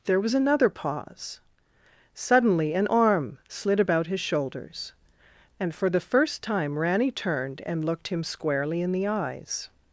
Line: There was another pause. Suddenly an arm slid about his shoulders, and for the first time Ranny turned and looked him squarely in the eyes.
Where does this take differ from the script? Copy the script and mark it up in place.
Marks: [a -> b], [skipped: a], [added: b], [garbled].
There was another pause. Suddenly an arm slid about his shoulders, and for the first time Ranny turned and looked him squarely in the eyes.